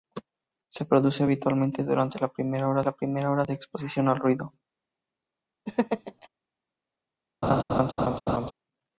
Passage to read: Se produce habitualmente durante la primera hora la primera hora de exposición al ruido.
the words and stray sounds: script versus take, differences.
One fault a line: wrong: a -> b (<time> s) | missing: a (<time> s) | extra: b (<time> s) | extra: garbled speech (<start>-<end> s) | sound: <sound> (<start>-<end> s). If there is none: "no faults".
sound: laugh (5.7-6.3 s)
sound: laugh (7.4-8.5 s)